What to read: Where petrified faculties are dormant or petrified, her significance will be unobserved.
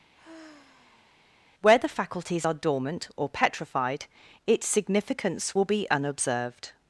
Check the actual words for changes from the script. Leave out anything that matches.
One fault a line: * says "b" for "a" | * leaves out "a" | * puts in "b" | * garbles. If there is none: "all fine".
* says "the" for "petrified"
* says "its" for "her"